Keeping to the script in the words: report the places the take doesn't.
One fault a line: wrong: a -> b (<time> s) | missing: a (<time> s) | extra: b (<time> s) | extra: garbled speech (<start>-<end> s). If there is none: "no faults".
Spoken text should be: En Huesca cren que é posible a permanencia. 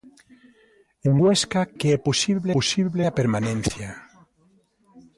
missing: cren (1.6 s)
extra: posible (2.6 s)